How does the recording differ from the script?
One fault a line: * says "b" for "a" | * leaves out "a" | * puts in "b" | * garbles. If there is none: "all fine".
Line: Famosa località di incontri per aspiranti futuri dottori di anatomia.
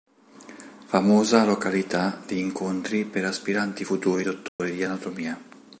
all fine